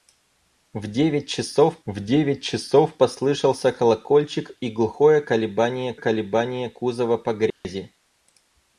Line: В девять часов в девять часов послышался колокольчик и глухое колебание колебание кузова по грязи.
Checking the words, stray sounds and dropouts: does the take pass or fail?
fail